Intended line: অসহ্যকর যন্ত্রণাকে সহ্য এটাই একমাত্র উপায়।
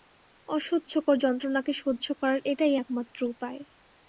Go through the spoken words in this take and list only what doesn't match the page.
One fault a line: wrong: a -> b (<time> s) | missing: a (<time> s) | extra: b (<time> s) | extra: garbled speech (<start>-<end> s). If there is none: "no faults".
extra: করার (2.2 s)